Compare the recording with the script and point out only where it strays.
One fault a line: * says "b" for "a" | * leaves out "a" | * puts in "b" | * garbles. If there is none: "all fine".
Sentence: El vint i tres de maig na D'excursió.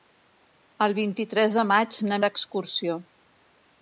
all fine